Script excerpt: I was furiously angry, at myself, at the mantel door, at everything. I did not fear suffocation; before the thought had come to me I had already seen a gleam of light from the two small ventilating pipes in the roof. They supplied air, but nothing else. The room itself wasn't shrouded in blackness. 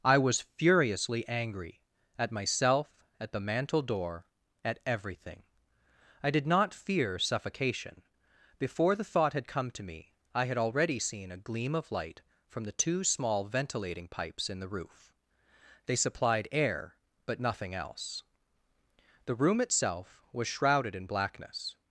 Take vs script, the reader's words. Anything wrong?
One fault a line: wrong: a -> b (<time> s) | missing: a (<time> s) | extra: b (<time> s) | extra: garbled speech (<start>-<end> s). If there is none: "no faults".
wrong: wasn't -> was (20.3 s)